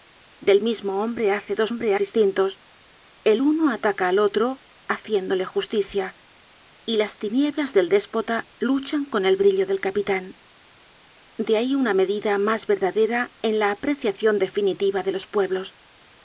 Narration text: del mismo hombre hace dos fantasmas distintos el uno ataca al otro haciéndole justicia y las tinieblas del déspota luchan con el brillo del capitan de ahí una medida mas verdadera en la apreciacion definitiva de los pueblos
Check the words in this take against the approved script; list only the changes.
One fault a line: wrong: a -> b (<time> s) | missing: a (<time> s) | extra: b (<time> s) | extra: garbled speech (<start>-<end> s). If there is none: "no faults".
wrong: fantasmas -> hombre (1.7 s)